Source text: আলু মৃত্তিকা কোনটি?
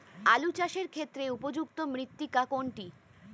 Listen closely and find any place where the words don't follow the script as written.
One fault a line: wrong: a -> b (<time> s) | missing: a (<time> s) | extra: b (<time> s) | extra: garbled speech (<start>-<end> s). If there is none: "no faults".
extra: চাষের ক্ষেত্রে উপযুক্ত (0.6 s)